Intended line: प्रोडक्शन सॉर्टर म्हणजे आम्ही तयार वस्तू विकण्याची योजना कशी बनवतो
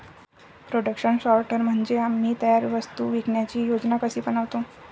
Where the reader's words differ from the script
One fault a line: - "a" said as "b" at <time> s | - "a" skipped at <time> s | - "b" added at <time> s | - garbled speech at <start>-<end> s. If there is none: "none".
none